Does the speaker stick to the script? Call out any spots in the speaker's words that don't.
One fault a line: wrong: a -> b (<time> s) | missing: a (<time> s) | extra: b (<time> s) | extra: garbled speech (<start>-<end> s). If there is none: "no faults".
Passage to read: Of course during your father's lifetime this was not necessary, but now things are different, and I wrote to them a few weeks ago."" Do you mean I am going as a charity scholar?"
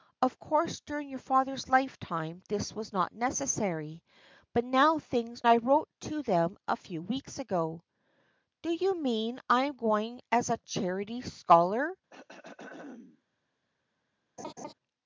missing: are different and (5.4 s)